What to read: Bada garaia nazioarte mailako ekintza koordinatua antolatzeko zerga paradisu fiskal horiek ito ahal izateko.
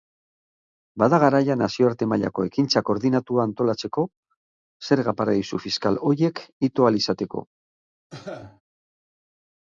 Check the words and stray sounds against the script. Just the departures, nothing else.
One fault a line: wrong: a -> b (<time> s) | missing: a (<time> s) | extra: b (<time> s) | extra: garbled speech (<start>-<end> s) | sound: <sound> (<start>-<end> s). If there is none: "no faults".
sound: cough (8.1-8.6 s)